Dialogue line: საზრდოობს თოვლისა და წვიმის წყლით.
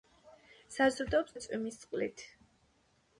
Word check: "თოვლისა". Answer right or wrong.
wrong